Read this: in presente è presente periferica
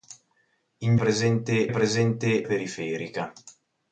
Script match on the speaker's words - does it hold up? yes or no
yes